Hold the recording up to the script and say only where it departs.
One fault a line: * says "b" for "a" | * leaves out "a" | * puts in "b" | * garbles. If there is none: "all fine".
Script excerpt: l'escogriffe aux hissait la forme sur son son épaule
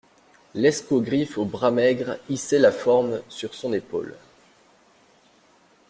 * puts in "bras maigres"
* leaves out "son"